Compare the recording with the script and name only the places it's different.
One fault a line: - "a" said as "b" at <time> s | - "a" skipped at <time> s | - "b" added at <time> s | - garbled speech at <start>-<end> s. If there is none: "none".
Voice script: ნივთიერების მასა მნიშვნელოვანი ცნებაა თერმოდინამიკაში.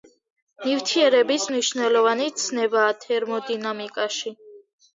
- "მასა" skipped at 1.4 s